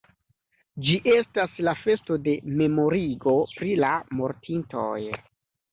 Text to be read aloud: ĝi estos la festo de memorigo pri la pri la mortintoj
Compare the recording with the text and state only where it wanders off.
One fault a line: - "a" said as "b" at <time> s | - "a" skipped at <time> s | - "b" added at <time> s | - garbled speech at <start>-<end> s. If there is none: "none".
- "estos" said as "estas" at 1.1 s
- "pri la" skipped at 3.9 s